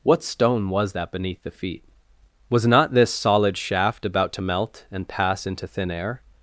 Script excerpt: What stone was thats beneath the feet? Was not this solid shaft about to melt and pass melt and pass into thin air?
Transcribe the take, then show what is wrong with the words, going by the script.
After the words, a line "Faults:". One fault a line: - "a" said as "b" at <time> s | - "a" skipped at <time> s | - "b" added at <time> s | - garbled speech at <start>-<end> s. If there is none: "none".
What stone was that beneath the feet? Was not this solid shaft about to melt and pass into thin air?
Faults:
- "thats" said as "that" at 0.9 s
- "melt and pass" skipped at 5.4 s